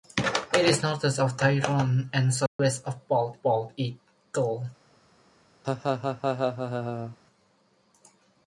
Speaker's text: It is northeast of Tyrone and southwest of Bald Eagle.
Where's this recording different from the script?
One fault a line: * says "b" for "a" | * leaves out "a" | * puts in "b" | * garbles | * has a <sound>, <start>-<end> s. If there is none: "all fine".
* has a dropout, 2.5-2.6 s
* puts in "Bald"
* has a laugh, 5.6-7.2 s